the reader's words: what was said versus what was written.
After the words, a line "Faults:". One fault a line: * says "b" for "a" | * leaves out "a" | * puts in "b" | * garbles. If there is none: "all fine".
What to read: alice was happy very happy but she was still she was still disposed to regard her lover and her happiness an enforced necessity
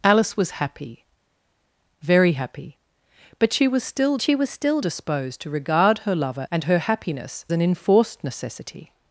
alice was happy very happy but she was still she was still disposed to regard her lover and her happiness an enforced necessity
Faults:
all fine